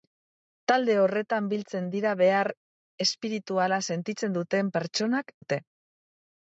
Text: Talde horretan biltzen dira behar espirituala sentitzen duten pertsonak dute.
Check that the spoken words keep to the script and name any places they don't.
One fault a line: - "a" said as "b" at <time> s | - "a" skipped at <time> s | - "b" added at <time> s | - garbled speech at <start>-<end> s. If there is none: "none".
none